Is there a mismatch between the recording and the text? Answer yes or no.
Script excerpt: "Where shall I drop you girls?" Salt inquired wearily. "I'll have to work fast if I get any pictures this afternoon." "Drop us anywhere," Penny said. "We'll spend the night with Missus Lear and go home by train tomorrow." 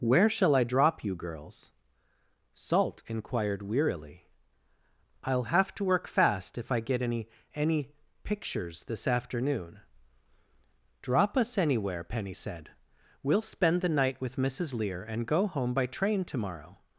yes